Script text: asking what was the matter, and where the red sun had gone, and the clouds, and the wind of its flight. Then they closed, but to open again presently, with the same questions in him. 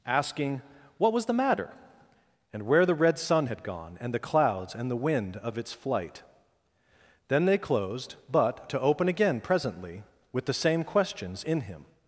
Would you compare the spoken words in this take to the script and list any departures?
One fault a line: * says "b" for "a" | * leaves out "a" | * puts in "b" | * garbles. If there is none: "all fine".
all fine